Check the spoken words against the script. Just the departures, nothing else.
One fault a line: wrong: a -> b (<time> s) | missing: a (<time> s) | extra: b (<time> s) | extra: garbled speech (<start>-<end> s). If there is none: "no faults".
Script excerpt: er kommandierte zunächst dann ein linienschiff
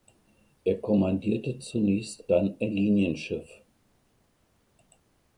no faults